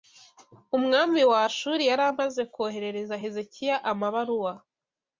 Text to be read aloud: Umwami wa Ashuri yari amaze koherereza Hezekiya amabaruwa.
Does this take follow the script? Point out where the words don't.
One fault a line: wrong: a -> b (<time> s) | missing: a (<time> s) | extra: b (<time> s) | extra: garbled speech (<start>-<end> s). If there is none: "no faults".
no faults